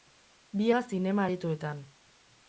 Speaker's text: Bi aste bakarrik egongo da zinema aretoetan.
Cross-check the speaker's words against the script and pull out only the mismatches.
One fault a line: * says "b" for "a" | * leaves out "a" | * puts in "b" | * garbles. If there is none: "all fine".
* leaves out "aste bakarrik egongo"